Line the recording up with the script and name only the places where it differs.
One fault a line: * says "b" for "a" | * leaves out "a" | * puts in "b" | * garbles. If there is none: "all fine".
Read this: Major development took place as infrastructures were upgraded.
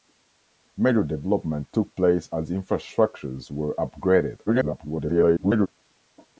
* garbles